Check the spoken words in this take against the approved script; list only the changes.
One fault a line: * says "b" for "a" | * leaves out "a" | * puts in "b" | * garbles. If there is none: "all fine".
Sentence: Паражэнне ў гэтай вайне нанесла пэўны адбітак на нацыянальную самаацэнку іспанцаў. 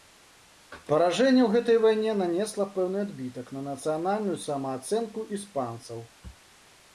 all fine